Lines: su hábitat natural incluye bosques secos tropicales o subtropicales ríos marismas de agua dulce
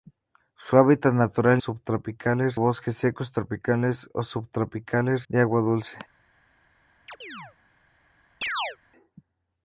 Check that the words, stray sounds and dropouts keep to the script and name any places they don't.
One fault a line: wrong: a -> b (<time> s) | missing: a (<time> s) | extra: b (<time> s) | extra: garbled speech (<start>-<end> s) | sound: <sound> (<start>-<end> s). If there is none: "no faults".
wrong: incluye -> subtropicales (1.6 s)
missing: ríos marismas (5.3 s)
sound: chirp (7.1-7.6 s)
sound: chirp (8.4-8.8 s)